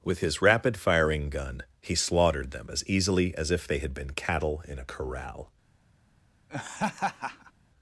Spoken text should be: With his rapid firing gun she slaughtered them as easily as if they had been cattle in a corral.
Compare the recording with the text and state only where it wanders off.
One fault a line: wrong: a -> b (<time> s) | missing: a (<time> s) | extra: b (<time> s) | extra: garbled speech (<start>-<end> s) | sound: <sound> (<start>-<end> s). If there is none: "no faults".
wrong: she -> he (1.8 s)
sound: laugh (6.5-7.5 s)